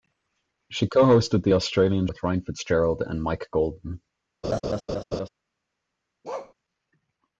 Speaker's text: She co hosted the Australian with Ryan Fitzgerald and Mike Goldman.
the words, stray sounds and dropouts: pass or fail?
fail